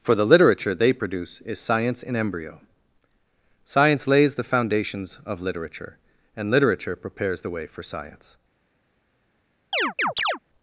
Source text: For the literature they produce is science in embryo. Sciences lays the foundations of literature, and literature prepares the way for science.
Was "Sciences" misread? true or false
true